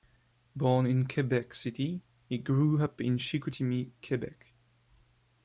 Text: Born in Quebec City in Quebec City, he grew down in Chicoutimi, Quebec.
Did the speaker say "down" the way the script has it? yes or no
no